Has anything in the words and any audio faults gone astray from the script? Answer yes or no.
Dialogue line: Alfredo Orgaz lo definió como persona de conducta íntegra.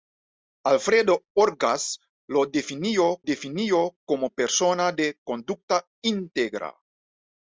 yes